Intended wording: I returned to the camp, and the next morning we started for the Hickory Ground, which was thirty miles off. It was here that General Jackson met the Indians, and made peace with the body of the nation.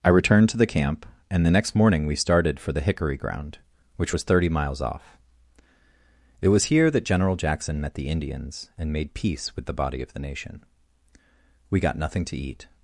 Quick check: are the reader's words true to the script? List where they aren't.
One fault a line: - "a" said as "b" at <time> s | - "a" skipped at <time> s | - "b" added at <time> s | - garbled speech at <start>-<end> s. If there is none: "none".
- "We got nothing to eat" added at 11.7 s